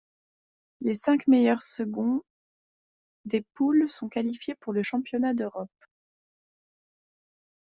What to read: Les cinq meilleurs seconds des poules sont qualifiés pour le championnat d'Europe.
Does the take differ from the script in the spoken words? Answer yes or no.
no